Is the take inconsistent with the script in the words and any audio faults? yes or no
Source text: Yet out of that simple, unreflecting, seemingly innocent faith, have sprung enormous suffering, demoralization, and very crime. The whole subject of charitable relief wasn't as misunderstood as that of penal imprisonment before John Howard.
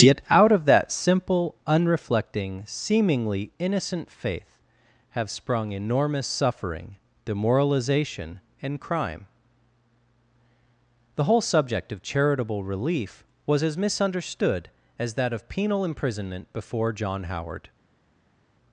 yes